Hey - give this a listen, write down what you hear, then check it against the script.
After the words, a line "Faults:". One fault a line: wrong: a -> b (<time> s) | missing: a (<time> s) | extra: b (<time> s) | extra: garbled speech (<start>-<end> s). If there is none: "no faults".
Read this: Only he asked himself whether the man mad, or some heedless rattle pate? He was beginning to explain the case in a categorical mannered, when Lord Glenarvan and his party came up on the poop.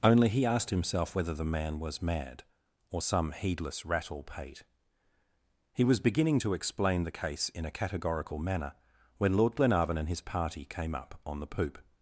Only he asked himself whether the man was mad, or some heedless rattle pate? He was beginning to explain the case in a categorical manner, when Lord Glenarvan and his party came up on the poop.
Faults:
extra: was (1.8 s)
wrong: mannered -> manner (8.4 s)